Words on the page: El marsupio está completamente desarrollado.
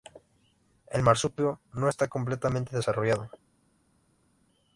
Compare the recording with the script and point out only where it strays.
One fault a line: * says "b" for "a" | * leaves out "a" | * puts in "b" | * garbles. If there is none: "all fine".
* puts in "no"